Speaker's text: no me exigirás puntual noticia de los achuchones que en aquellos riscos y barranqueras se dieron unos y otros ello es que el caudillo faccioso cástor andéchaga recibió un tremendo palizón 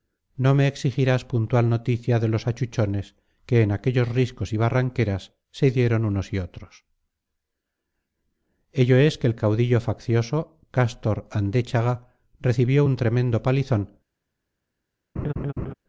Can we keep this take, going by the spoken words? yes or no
yes